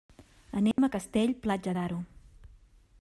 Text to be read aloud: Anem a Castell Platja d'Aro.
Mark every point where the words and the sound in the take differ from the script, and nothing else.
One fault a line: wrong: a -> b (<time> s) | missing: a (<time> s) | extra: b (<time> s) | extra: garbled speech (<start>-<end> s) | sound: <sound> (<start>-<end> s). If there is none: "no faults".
sound: dropout (0.7-0.8 s)